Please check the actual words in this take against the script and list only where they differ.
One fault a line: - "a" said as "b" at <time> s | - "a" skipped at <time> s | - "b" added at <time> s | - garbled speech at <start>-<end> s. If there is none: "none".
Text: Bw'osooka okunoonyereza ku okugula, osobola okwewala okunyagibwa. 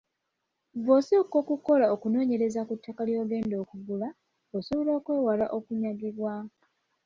- "okukola" added at 1.4 s
- "ttaka ly'ogenda" added at 2.8 s